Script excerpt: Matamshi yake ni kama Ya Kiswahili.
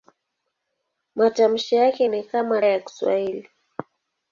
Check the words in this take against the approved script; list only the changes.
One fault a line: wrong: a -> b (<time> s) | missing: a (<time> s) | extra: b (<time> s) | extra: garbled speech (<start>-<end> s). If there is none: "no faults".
no faults